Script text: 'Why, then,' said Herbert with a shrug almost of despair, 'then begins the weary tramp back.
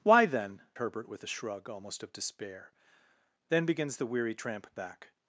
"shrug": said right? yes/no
yes